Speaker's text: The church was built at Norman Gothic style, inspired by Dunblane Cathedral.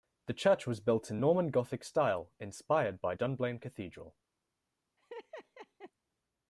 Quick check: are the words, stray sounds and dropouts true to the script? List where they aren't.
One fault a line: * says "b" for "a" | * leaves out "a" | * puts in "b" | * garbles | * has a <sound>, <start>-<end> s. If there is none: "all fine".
* says "in" for "at"
* has a laugh, 5.0-5.9 s